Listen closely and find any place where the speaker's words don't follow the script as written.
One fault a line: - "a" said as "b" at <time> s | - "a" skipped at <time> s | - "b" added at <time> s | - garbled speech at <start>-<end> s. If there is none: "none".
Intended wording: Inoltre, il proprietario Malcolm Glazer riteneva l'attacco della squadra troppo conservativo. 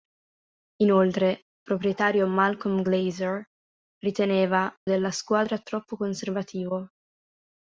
- "il" skipped at 1.4 s
- "l'attacco" skipped at 4.7 s